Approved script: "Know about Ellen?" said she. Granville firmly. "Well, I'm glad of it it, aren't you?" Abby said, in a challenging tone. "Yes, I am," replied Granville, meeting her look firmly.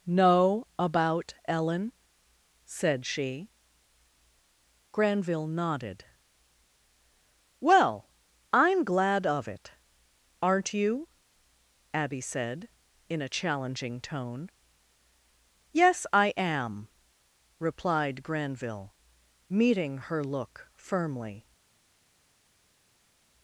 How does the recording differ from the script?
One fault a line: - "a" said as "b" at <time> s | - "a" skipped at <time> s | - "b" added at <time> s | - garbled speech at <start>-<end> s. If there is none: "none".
- "firmly" said as "nodded" at 5.5 s
- "it" skipped at 9.7 s